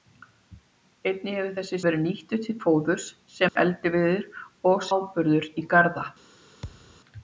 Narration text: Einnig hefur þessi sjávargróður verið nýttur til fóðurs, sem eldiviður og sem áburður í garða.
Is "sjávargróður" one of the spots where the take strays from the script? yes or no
yes